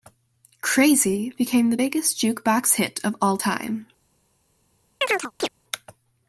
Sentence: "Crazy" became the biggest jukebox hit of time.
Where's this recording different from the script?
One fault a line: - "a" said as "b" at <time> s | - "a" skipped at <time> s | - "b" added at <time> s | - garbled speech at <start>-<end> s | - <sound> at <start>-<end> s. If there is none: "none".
- "all" added at 3.2 s
- chirp at 5.0-5.5 s